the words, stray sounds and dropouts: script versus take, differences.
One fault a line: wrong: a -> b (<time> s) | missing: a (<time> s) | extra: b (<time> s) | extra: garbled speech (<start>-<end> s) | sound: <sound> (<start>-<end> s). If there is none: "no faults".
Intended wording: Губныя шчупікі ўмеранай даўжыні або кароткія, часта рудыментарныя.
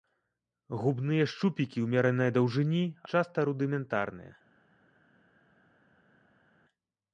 missing: або кароткія (2.8 s)